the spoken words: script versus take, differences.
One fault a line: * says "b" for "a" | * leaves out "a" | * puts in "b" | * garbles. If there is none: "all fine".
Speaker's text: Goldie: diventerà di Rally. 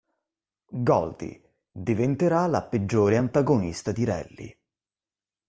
* puts in "la peggiore antagonista"